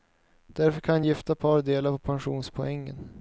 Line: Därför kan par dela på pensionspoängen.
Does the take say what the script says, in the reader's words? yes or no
no